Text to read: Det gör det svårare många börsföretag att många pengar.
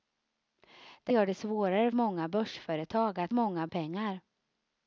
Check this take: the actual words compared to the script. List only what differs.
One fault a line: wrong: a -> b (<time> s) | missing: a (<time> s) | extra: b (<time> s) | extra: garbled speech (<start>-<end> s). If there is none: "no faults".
no faults